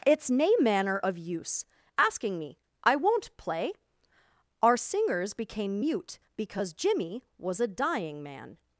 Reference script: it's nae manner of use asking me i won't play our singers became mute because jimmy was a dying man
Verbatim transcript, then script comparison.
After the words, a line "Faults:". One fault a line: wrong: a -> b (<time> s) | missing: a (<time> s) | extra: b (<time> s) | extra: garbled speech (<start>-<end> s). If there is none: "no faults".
it's nae manner of use asking me i won't play our singers became mute because jimmy was a dying man
Faults:
no faults